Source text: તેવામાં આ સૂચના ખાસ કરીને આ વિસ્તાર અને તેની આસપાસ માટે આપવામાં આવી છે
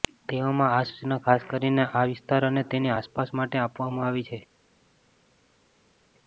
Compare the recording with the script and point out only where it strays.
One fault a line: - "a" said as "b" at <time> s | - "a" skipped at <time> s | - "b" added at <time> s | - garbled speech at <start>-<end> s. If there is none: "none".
none